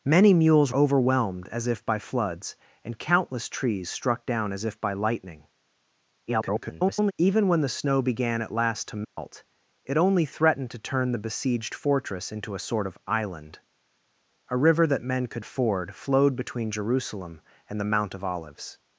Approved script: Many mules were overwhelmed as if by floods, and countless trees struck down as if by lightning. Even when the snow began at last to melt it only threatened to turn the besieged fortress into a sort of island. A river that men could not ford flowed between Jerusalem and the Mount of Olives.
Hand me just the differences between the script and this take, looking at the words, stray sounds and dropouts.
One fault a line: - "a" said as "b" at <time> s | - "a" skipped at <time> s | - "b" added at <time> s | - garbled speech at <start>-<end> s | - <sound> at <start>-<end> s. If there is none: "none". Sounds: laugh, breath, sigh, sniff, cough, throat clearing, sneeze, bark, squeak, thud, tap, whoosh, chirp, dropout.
- "were" skipped at 0.7 s
- garbled speech at 6.3-7.1 s
- dropout at 9.0-9.2 s
- "not" skipped at 15.4 s